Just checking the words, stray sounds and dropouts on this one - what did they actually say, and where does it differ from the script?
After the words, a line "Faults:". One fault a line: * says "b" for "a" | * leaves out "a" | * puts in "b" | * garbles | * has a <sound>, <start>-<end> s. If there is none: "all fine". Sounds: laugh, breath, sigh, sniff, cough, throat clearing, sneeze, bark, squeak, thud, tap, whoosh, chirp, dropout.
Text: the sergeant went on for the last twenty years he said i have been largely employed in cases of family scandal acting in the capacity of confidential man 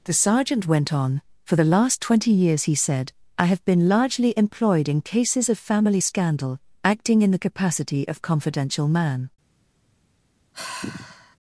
the sergeant went on for the last twenty years he said i have been largely employed in cases of family scandal acting in the capacity of confidential man
Faults:
* has a sigh, 10.5-11.4 s